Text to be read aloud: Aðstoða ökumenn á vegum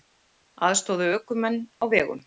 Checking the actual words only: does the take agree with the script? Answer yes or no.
yes